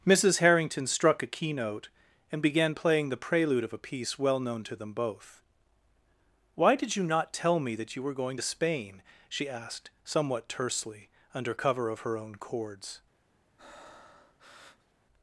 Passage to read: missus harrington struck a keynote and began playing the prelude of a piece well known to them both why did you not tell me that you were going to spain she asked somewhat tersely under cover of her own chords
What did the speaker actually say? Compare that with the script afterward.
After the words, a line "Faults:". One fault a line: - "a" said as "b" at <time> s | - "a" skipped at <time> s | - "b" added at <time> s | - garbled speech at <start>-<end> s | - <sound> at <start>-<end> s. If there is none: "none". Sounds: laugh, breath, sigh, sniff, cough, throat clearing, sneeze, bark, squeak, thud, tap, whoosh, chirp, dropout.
missus harrington struck a keynote and began playing the prelude of a piece well known to them both why did you not tell me that you were going to spain she asked somewhat tersely under cover of her own chords
Faults:
- breath at 13.6-14.9 s